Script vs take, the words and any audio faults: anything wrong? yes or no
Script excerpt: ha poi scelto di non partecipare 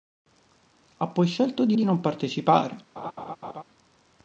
yes